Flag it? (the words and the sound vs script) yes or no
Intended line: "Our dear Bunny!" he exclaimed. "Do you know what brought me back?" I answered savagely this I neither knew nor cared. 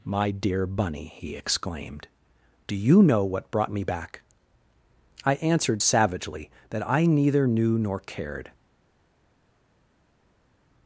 yes